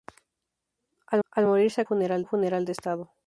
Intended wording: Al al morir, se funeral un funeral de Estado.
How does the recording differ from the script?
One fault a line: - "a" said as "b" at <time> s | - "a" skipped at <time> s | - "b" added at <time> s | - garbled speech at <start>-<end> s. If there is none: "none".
none